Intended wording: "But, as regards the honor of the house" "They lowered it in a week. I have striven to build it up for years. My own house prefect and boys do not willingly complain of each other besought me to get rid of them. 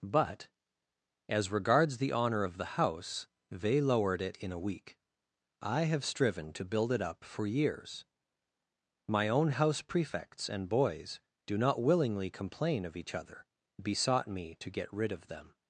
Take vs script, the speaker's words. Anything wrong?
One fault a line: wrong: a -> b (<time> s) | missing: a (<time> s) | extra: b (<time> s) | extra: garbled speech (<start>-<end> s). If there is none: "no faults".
wrong: prefect -> prefects (9.8 s)